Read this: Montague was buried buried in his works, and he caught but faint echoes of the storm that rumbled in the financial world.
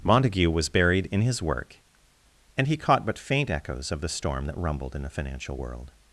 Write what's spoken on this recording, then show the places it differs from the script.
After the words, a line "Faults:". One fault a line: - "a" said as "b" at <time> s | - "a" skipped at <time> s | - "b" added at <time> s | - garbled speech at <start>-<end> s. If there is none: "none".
Montague was buried in his work, and he caught but faint echoes of the storm that rumbled in the financial world.
Faults:
- "buried" skipped at 1.1 s
- "works" said as "work" at 1.4 s